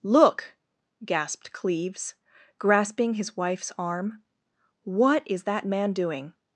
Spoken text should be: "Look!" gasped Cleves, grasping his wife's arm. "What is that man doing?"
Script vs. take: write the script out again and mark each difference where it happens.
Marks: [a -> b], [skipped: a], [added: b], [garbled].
"Look!" gasped Cleves, grasping his wife's arm. "What is that man doing?"